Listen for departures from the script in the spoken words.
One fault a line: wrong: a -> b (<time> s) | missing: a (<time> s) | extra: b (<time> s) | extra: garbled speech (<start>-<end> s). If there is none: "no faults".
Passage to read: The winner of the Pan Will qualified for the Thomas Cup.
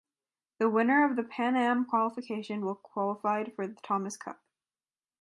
extra: Am qualification (1.6 s)